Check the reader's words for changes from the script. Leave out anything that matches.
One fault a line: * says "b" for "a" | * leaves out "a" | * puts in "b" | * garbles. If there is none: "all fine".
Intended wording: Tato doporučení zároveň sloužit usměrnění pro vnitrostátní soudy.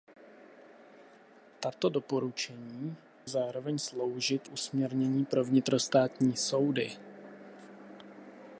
all fine